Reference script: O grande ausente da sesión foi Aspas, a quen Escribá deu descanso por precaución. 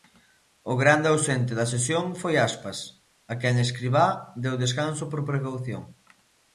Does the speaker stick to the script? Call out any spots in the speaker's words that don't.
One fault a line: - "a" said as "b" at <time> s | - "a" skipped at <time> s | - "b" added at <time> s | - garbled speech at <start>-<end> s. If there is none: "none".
none